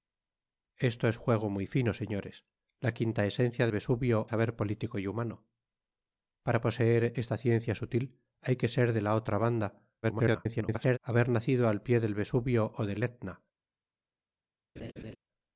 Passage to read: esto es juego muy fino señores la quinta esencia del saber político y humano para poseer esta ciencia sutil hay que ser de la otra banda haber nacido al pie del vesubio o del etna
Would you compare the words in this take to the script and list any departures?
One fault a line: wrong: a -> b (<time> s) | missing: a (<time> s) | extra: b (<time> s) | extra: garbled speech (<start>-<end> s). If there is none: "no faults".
wrong: del -> vesubio (3.7 s)
extra: garbled speech (10.0-11.0 s)